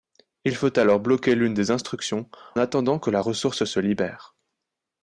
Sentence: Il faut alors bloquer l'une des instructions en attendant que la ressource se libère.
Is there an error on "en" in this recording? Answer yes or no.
yes